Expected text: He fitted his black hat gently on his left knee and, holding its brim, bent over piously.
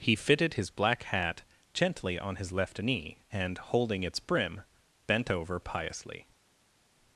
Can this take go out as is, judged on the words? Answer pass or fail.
pass